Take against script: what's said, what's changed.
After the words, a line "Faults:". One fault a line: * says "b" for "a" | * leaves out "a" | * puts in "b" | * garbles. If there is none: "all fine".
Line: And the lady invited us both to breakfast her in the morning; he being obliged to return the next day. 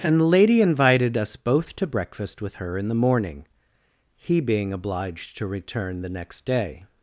And the lady invited us both to breakfast with her in the morning; he being obliged to return the next day.
Faults:
* puts in "with"